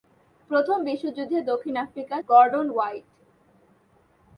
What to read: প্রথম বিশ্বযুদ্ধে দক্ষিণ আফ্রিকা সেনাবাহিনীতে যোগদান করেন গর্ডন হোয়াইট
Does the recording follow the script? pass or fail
fail